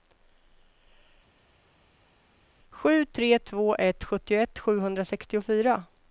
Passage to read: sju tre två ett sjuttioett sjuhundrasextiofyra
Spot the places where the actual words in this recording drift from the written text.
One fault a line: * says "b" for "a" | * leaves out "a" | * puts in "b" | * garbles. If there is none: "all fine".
all fine